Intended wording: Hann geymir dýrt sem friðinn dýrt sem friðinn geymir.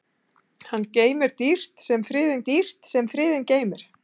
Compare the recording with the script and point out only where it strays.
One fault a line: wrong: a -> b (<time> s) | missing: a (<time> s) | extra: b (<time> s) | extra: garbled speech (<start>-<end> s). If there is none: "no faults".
no faults